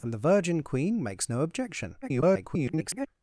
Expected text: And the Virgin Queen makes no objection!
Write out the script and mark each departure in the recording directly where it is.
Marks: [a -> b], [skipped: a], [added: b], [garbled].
And the Virgin Queen makes no objection! [garbled]